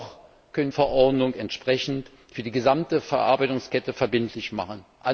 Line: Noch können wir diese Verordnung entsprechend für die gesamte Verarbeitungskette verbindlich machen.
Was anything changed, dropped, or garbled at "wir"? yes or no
yes